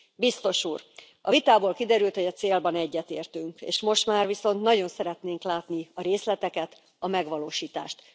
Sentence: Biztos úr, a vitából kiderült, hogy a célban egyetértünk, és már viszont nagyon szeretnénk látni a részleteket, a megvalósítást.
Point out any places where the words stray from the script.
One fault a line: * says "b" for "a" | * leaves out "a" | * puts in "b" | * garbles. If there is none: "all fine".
* puts in "most"